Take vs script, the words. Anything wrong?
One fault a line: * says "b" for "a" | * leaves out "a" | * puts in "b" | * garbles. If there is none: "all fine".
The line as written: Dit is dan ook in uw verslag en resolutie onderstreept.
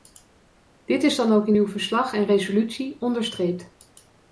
all fine